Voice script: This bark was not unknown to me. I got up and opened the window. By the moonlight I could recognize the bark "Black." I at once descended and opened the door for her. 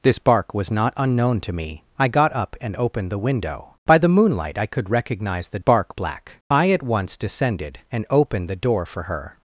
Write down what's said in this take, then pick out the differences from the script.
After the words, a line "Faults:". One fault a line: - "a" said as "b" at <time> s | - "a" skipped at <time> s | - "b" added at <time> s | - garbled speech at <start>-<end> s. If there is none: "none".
This bark was not unknown to me. I got up and opened the window. By the moonlight I could recognize the bark "Black." I at once descended and opened the door for her.
Faults:
none